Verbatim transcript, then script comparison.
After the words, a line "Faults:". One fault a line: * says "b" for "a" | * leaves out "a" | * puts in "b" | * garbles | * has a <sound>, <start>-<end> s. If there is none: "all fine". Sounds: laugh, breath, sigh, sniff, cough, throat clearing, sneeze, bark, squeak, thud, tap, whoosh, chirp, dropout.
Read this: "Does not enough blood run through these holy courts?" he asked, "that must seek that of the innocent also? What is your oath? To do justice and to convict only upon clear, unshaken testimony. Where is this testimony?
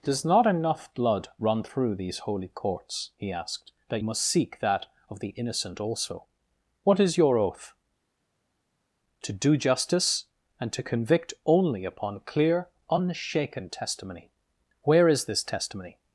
"Does not enough blood run through these holy courts?" he asked, "that must seek that of the innocent also? What is your oath? To do justice and to convict only upon clear, unshaken testimony. Where is this testimony?
Faults:
all fine